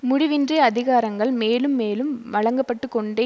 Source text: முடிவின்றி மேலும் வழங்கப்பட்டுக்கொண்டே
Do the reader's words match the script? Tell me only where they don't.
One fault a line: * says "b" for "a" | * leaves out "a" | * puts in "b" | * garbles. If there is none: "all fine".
* puts in "அதிகாரங்கள் மேலும்"